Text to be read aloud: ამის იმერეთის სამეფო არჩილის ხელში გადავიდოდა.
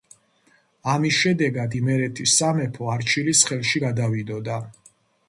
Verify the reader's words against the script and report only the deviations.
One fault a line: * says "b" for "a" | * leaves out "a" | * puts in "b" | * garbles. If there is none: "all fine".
* puts in "შედეგად"